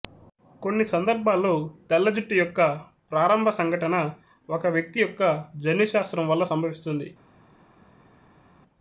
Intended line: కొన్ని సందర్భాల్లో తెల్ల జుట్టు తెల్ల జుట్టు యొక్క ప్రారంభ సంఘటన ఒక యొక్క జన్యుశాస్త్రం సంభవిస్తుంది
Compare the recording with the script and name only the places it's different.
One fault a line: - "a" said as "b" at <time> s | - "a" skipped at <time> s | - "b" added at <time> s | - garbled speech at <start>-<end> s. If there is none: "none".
- "తెల్ల జుట్టు" skipped at 2.4 s
- "వ్యక్తి" added at 4.7 s
- "వల్ల" added at 6.3 s